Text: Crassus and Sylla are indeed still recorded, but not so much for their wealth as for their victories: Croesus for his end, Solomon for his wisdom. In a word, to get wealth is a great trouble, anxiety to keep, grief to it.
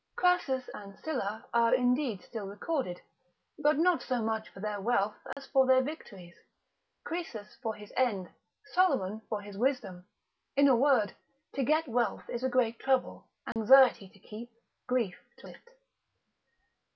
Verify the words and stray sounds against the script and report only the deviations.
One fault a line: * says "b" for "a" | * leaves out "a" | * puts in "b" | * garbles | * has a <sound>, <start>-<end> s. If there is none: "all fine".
* has a dropout, 5.3-5.4 s
* has a dropout, 13.5-13.6 s